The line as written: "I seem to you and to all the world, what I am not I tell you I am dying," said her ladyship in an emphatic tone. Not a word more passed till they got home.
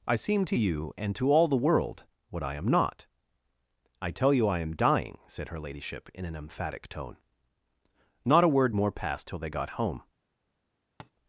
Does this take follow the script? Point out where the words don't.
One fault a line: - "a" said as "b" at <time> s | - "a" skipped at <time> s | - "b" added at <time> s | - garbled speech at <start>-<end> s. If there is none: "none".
none